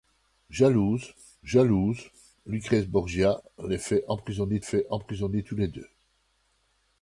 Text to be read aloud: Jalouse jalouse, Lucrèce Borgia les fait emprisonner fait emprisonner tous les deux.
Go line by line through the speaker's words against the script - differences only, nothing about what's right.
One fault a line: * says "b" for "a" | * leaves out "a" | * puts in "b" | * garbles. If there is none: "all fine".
all fine